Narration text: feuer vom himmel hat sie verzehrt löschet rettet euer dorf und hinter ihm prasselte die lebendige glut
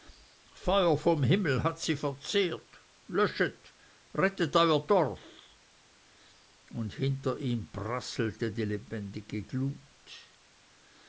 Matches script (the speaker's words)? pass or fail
pass